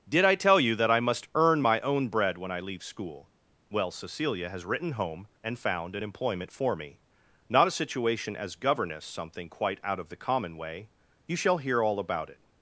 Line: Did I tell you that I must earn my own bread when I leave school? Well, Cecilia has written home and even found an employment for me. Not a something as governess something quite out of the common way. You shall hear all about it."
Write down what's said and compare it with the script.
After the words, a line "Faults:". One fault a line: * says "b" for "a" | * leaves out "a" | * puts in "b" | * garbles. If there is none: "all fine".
Did I tell you that I must earn my own bread when I leave school? Well, Cecilia has written home and found an employment for me. Not a situation as governess something quite out of the common way. You shall hear all about it."
Faults:
* leaves out "even"
* says "situation" for "something"